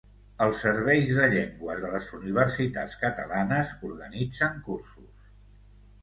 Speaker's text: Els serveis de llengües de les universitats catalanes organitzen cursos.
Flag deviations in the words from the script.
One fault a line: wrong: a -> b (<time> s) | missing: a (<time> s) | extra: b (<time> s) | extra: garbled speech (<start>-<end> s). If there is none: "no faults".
no faults